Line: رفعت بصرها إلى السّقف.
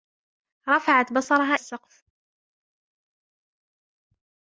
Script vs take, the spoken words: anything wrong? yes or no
yes